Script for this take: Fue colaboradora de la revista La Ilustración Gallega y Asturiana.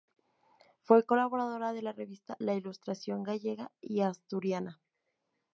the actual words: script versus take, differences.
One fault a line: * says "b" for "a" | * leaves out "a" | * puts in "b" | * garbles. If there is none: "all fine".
all fine